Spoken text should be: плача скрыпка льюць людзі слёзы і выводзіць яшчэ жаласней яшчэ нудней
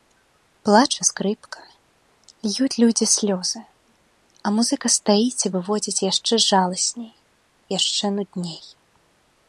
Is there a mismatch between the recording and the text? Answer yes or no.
yes